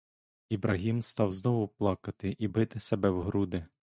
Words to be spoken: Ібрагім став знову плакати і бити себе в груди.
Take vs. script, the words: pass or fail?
pass